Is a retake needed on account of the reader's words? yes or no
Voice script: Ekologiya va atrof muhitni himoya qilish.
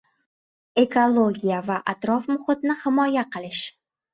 no